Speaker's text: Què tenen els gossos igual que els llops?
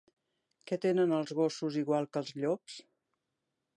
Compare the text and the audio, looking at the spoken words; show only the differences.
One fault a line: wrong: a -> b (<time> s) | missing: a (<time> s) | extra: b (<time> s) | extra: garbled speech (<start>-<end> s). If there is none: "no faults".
no faults